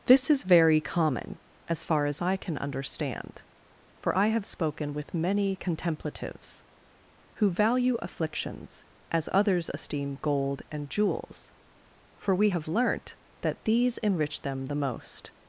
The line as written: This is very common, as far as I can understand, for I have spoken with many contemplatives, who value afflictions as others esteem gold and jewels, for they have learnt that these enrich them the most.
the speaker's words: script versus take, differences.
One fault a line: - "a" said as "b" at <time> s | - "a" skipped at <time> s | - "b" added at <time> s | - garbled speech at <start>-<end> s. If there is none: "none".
- "they" said as "we" at 12.3 s